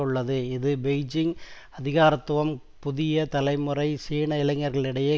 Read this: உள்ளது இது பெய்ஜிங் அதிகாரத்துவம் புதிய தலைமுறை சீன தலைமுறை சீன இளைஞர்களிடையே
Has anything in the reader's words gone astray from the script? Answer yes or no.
yes